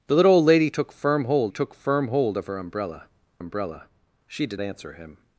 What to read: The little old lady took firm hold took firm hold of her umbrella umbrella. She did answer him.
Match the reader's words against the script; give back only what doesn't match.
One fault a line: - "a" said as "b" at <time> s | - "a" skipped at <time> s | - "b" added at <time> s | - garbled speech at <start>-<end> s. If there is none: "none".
none